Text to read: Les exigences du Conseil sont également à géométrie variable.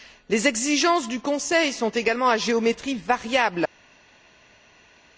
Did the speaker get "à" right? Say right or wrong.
right